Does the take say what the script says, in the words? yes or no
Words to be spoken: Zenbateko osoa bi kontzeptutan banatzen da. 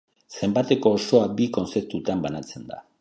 yes